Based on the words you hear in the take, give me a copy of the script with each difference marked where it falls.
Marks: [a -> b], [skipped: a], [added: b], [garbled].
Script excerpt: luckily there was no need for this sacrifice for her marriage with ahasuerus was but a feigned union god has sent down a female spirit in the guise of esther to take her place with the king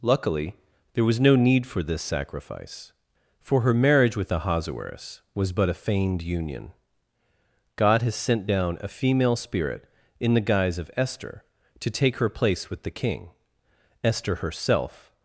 luckily there was no need for this sacrifice for her marriage with ahasuerus was but a feigned union god has sent down a female spirit in the guise of esther to take her place with the king [added: esther herself]